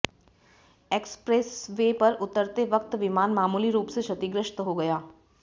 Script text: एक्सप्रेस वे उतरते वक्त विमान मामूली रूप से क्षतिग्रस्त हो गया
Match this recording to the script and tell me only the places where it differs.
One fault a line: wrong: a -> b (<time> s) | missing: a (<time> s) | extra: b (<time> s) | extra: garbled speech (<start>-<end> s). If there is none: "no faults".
extra: पर (2.0 s)